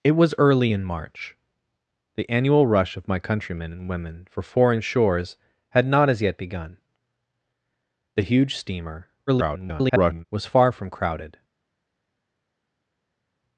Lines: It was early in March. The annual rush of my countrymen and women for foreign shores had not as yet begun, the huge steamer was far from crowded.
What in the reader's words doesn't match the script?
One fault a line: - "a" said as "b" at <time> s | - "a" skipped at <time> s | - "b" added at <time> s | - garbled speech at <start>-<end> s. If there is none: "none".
- garbled speech at 9.3-10.2 s